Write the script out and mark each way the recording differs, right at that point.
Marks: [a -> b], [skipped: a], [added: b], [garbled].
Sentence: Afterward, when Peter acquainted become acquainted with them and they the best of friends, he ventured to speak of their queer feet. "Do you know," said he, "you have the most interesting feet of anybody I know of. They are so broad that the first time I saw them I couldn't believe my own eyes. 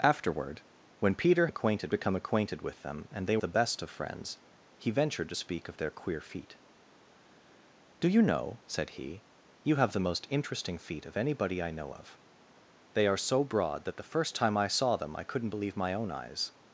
Afterward, when Peter acquainted become acquainted with them and they the best of friends, he ventured to speak of their queer feet. "Do you know," said he, "you have the most interesting feet of anybody I know of. They are so broad that the first time I saw them I couldn't believe my own eyes.